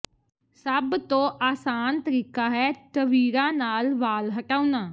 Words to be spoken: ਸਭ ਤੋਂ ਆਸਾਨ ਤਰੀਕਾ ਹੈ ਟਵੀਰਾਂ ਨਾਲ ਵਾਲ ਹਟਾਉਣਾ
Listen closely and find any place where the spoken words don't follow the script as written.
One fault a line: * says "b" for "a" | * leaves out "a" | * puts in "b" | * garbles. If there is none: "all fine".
all fine